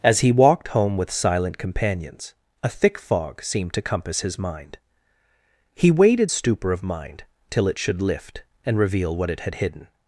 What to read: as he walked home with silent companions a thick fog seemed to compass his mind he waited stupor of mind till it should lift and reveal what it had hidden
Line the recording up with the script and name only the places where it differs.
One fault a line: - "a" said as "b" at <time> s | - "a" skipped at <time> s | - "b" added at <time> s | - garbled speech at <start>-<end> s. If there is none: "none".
none